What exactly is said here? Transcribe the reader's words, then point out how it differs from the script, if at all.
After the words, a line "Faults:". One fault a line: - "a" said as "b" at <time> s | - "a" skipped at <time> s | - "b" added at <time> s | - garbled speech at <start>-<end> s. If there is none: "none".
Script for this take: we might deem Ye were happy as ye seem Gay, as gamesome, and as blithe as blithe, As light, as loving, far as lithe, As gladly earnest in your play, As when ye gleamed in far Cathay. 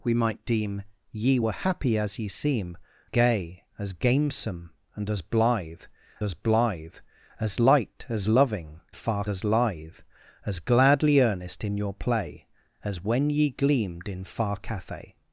we might deem Ye were happy as ye seem Gay, as gamesome, and as blithe as blithe, As light, as loving, far as lithe, As gladly earnest in your play, As when ye gleamed in far Cathay.
Faults:
none